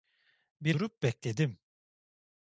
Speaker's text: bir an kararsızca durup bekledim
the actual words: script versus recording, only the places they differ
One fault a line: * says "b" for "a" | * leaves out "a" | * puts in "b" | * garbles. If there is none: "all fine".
* leaves out "an kararsızca"